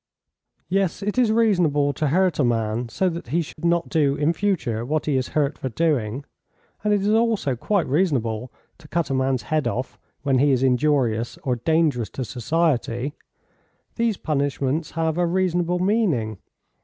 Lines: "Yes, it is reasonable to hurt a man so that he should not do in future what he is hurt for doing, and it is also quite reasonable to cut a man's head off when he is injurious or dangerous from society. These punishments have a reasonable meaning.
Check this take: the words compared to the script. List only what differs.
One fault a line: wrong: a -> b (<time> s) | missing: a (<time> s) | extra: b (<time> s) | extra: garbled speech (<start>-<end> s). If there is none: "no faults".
wrong: from -> to (12.1 s)